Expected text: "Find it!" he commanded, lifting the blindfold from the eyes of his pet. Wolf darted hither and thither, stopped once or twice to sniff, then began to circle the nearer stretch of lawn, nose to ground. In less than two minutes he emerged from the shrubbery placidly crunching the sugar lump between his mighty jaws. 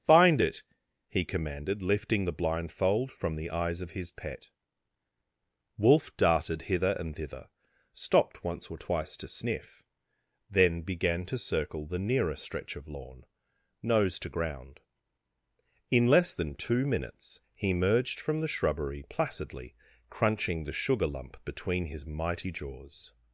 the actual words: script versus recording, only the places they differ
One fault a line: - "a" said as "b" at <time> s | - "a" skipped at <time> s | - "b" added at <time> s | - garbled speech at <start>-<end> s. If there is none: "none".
none